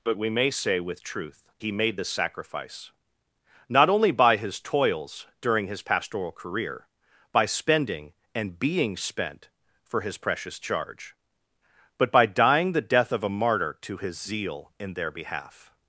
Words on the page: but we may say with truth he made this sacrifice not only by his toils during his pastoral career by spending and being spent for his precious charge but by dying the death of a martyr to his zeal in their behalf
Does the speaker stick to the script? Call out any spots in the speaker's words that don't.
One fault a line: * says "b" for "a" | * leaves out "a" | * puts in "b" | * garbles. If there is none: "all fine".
all fine